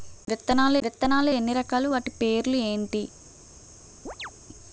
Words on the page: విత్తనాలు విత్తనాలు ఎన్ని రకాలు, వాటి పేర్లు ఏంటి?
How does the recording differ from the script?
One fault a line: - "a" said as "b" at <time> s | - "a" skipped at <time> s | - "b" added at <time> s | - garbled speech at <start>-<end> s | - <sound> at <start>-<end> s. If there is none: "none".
- chirp at 4.1-4.3 s